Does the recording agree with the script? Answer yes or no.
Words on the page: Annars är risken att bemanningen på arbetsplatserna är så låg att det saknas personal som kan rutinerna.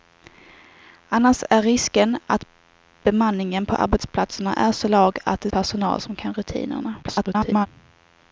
no